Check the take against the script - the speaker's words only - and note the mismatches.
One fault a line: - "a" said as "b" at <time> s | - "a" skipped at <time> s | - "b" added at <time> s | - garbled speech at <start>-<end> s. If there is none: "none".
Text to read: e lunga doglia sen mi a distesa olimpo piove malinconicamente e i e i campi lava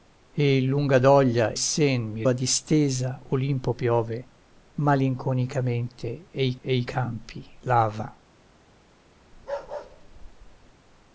none